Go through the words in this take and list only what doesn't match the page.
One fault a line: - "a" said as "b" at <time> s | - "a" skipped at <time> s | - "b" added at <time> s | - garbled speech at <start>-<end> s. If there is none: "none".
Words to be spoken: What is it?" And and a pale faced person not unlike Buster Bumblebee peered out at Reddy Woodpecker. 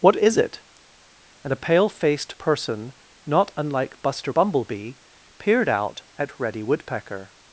- "and" skipped at 1.5 s